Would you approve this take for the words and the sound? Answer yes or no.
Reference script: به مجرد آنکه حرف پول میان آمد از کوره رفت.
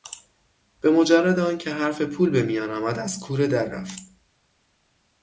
no